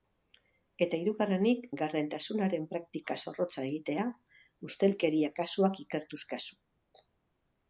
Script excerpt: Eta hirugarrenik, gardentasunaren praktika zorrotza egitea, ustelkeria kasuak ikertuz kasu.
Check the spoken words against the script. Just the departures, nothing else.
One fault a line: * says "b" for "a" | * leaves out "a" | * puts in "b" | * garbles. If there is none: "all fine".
all fine